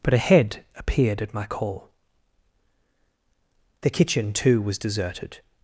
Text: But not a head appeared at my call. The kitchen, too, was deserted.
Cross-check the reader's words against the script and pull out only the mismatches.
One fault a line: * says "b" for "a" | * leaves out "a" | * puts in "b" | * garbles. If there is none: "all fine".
* leaves out "not"